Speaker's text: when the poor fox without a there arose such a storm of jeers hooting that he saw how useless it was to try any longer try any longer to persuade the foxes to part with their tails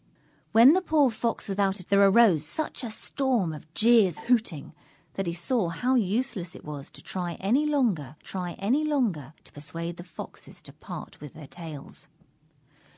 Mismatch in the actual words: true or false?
false